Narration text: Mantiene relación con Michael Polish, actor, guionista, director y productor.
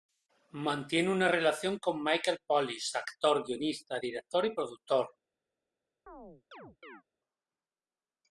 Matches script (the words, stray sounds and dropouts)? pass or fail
fail